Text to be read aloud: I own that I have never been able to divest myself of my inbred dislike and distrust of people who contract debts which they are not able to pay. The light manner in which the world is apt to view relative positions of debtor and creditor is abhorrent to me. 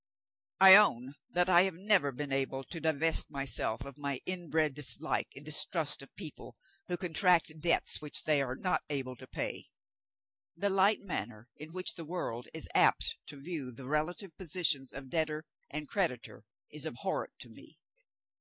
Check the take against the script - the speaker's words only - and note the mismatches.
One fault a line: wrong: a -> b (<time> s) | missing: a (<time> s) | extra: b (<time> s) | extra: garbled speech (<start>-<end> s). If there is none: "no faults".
extra: the (13.7 s)